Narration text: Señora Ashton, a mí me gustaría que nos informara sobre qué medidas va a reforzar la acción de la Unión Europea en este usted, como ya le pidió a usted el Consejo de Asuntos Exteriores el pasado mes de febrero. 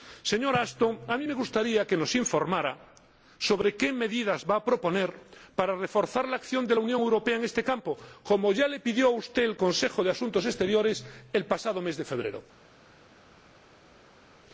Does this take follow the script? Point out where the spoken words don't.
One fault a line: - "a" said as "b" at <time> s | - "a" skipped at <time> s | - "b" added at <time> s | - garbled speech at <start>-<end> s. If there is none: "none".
- "proponer para" added at 4.6 s
- "usted" said as "campo" at 7.6 s